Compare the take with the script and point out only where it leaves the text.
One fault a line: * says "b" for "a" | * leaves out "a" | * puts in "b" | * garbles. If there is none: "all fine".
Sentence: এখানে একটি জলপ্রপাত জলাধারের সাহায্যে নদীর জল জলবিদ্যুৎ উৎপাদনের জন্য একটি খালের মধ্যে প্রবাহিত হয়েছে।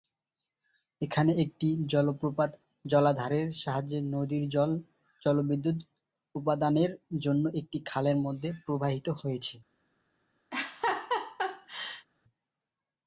all fine